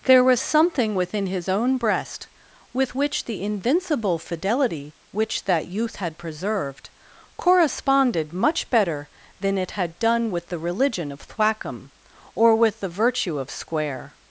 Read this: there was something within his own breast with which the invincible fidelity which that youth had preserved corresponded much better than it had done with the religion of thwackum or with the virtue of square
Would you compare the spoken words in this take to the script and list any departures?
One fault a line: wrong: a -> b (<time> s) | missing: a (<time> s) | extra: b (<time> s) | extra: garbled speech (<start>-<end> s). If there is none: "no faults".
no faults